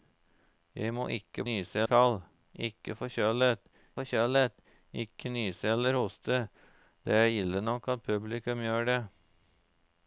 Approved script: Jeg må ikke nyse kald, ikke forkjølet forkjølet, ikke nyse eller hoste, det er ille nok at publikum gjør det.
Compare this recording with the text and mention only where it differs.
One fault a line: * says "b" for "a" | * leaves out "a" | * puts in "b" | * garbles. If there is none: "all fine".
all fine